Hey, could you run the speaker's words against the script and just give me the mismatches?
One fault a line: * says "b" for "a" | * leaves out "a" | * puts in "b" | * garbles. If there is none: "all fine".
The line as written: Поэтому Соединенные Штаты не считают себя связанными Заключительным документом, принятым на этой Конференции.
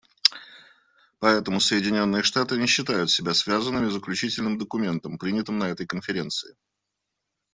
all fine